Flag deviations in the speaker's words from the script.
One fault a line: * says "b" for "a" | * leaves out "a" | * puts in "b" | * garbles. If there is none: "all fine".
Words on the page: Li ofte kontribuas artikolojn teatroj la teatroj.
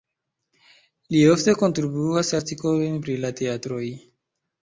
* says "pri" for "teatroj"